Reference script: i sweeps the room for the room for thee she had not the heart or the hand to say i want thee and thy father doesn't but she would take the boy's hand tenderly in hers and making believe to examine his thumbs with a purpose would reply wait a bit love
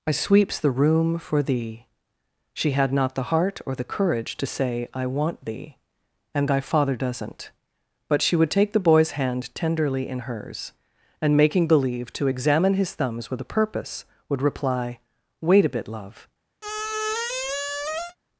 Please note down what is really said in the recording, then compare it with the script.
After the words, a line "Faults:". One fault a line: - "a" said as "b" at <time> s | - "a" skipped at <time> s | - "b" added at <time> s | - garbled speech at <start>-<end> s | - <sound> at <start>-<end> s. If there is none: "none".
i sweeps the room for thee she had not the heart or the courage to say i want thee and thy father doesn't but she would take the boy's hand tenderly in hers and making believe to examine his thumbs with a purpose would reply wait a bit love
Faults:
- "the room for" skipped at 1.4 s
- "hand" said as "courage" at 3.8 s
- squeak at 16.6-18.2 s